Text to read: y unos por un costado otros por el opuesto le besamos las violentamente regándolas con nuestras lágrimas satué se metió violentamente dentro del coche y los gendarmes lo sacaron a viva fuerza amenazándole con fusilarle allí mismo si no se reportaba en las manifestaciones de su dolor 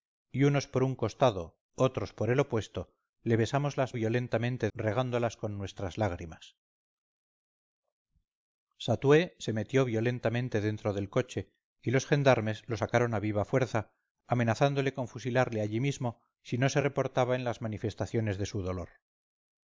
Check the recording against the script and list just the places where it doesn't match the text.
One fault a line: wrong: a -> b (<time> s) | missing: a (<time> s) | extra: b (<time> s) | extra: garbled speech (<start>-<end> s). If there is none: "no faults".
no faults